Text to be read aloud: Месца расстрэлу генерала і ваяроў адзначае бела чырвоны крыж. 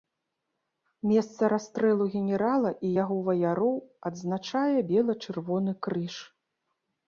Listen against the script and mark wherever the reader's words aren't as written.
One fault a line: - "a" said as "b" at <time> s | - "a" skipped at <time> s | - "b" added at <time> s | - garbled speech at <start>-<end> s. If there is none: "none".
- "яго" added at 3.0 s